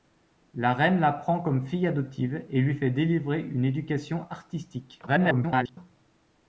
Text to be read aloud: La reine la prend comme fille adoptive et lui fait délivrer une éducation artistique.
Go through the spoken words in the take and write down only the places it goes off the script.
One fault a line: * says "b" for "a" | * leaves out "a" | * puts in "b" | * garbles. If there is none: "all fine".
* garbles